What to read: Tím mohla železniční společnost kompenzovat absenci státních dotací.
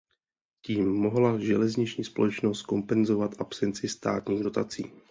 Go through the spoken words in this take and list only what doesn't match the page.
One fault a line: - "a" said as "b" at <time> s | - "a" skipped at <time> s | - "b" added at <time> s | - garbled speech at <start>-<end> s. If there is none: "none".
none